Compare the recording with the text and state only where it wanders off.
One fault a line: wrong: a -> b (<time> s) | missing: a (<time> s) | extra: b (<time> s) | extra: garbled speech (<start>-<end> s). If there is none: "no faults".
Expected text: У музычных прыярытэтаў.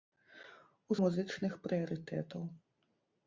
no faults